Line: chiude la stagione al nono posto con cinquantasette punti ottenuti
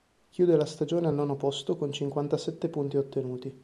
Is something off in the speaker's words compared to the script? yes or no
no